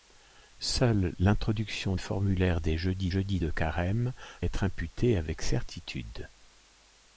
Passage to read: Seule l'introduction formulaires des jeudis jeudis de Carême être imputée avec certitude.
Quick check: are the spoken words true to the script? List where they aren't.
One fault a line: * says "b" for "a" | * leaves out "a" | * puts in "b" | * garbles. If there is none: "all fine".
all fine